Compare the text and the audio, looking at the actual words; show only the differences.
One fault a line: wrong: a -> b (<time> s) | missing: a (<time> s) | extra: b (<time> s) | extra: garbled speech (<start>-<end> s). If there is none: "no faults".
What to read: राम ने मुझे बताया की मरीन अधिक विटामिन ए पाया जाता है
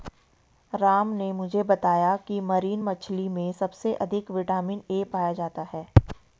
extra: मछली में सबसे (2.8 s)